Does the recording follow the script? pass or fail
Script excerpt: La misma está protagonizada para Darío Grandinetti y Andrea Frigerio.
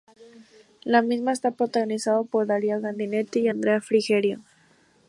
fail